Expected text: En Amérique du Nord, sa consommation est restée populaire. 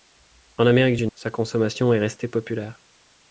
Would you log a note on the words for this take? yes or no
yes